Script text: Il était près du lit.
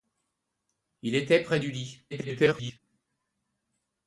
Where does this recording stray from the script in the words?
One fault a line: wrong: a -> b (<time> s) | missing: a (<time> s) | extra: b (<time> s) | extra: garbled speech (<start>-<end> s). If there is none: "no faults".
extra: garbled speech (2.1-2.8 s)